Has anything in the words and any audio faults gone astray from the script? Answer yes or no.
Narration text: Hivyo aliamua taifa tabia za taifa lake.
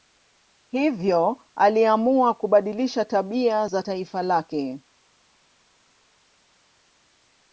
yes